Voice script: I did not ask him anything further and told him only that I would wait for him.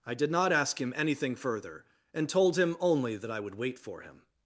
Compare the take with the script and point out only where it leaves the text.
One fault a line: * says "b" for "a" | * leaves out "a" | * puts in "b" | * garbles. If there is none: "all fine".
all fine